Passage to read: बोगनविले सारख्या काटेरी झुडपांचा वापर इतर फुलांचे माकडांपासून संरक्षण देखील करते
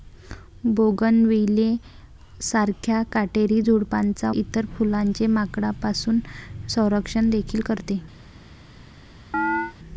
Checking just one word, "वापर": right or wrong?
wrong